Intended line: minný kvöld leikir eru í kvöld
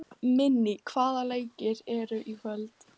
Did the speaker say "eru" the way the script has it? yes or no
yes